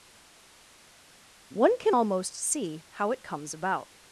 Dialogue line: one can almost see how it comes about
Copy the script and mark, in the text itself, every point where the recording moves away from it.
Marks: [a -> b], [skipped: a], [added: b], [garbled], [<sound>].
one can almost see how it comes about